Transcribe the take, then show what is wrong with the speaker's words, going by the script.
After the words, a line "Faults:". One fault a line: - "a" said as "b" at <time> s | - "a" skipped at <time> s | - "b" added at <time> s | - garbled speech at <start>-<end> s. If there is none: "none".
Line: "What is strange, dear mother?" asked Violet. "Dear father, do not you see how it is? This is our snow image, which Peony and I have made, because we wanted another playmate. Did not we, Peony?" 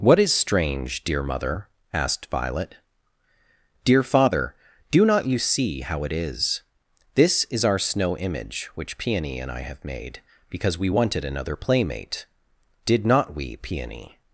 "What is strange, dear mother?" asked Violet. "Dear father, do not you see how it is? This is our snow image, which Peony and I have made, because we wanted another playmate. Did not we, Peony?"
Faults:
none